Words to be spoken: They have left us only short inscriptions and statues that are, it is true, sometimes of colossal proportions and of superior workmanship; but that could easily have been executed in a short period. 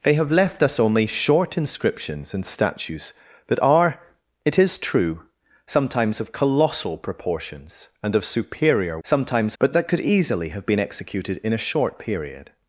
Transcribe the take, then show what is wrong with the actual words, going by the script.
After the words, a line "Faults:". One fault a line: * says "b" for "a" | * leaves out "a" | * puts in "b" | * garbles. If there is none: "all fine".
They have left us only short inscriptions and statues that are, it is true, sometimes of colossal proportions and of superior sometimes; but that could easily have been executed in a short period.
Faults:
* says "sometimes" for "workmanship"